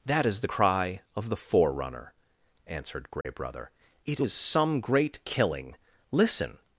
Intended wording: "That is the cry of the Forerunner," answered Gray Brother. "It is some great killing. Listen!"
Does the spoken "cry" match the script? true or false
true